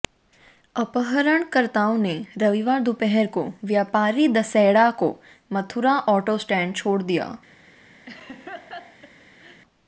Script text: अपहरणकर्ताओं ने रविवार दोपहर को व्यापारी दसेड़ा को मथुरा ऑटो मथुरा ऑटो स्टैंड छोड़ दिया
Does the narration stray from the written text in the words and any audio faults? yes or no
yes